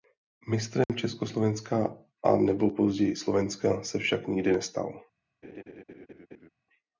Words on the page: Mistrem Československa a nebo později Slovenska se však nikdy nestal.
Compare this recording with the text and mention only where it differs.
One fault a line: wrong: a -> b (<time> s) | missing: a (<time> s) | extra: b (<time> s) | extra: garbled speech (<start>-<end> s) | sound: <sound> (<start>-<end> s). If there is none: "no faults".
sound: dropout (0.8-0.9 s)
sound: laugh (5.4-6.5 s)